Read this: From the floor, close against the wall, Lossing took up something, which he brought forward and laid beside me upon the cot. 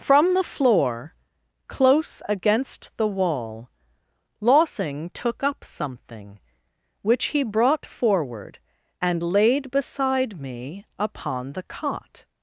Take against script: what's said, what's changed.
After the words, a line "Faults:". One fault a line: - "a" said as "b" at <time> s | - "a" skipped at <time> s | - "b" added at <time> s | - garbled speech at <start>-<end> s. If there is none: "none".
From the floor, close against the wall, Lossing took up something, which he brought forward and laid beside me upon the cot.
Faults:
none